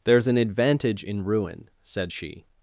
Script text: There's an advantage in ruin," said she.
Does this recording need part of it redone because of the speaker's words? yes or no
no